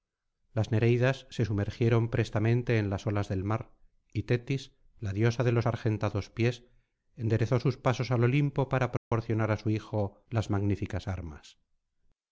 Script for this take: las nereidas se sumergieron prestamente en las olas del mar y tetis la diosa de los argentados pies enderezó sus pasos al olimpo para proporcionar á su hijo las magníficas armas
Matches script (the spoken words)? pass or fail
pass